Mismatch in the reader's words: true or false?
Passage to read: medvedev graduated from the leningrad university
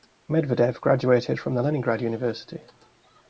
false